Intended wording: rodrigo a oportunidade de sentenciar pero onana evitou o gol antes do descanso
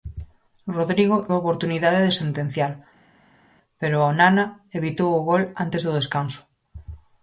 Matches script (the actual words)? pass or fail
pass